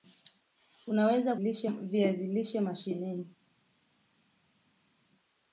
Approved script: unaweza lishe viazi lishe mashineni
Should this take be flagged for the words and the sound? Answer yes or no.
no